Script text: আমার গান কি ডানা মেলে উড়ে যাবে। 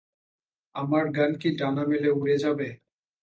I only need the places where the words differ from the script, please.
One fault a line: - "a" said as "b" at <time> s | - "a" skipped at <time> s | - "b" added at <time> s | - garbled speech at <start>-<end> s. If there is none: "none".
none